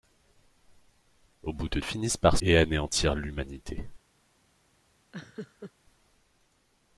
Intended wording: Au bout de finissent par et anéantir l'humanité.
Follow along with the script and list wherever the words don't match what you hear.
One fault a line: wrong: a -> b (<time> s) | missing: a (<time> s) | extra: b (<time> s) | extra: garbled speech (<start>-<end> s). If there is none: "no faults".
no faults